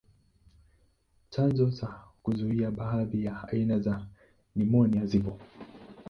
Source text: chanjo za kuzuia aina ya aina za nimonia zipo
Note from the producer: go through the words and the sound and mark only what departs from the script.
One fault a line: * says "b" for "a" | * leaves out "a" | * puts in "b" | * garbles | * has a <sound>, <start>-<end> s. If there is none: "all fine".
* says "baadhi" for "aina"